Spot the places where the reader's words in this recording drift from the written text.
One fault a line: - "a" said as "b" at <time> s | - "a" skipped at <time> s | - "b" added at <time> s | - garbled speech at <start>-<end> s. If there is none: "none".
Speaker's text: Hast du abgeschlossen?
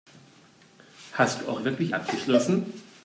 - "auch wirklich" added at 1.5 s